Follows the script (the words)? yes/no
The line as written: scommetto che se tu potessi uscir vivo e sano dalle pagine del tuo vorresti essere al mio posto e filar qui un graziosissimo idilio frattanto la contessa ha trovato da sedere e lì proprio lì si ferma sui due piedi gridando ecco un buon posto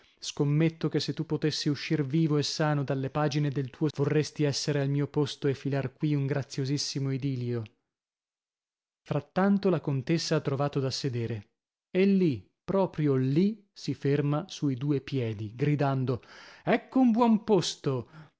yes